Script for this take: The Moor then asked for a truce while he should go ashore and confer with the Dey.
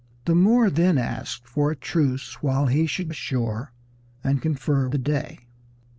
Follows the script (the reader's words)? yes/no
no